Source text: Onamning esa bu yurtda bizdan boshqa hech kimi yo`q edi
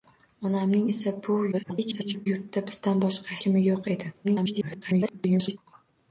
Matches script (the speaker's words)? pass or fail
fail